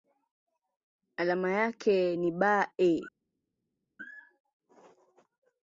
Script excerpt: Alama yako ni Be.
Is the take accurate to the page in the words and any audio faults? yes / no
no